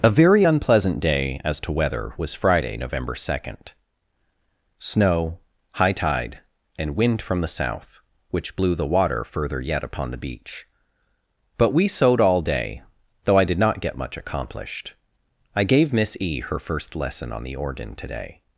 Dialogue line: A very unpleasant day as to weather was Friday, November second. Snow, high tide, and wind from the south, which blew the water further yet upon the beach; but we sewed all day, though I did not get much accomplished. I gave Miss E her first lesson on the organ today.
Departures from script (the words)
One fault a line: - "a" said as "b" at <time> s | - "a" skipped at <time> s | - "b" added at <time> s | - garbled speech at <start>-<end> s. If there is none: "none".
none